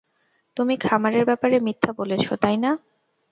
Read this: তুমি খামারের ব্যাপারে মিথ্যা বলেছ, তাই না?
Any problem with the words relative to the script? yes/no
no